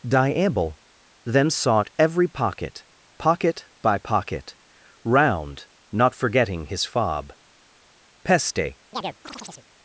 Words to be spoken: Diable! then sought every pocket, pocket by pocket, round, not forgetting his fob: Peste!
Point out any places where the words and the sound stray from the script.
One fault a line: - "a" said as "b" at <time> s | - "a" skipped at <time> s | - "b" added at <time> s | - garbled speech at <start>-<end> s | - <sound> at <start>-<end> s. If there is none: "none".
- chirp at 8.9-9.7 s